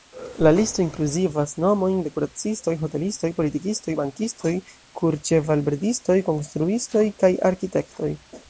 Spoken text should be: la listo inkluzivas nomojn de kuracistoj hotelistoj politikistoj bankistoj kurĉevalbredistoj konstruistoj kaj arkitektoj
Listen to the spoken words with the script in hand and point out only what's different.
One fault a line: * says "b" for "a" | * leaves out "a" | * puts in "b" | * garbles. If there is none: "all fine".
all fine